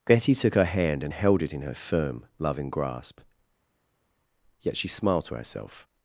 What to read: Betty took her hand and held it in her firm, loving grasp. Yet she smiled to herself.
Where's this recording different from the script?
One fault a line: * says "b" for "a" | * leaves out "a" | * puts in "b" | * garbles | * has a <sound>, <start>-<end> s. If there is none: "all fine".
all fine